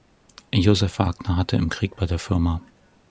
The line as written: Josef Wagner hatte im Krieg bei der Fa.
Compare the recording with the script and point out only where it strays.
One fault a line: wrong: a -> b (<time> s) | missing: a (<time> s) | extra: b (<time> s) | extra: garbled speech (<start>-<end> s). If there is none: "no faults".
no faults